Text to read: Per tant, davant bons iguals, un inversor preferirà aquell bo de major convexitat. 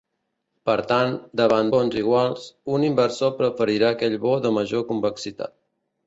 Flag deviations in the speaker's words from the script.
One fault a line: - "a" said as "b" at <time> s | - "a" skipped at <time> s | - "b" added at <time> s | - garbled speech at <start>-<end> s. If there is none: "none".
none